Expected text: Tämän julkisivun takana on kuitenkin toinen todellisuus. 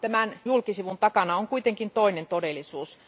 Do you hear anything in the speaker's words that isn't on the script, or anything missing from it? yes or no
no